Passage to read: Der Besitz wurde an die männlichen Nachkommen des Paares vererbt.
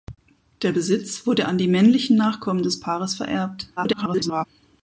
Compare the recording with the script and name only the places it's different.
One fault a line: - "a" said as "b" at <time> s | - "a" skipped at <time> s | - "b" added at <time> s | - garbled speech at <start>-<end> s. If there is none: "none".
- garbled speech at 3.8-4.5 s